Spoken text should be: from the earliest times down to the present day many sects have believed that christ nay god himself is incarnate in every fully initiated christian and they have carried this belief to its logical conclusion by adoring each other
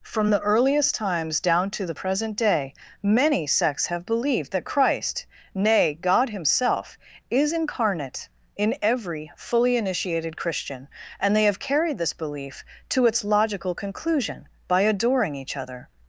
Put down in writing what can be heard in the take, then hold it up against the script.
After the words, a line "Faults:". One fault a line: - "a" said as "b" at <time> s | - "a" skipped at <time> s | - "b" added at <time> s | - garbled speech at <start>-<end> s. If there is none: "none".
from the earliest times down to the present day many sects have believed that christ nay god himself is incarnate in every fully initiated christian and they have carried this belief to its logical conclusion by adoring each other
Faults:
none